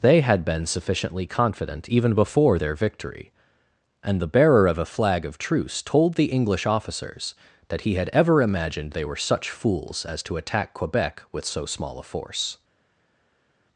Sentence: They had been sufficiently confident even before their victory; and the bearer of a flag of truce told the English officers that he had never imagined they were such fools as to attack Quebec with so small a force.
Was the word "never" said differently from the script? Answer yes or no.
yes